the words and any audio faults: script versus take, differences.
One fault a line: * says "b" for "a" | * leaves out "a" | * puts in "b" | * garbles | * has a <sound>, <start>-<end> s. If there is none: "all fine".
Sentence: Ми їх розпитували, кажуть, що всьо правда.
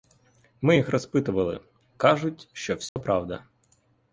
* has a dropout, 2.9-3.0 s